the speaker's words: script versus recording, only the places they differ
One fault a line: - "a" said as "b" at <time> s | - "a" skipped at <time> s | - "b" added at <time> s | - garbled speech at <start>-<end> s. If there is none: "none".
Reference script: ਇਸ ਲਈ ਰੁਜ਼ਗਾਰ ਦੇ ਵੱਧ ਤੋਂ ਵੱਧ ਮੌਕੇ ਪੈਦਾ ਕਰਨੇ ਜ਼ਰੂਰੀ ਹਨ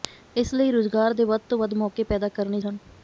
- "ਜ਼ਰੂਰੀ" skipped at 2.6 s